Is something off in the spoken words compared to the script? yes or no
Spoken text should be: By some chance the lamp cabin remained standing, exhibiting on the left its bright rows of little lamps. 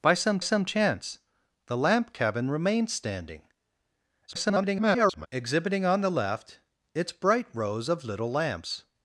yes